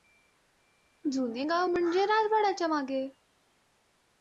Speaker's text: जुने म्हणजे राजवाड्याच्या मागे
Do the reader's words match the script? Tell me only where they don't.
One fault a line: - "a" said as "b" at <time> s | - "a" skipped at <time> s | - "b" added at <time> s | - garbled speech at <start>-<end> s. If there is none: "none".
- "गाव" added at 1.4 s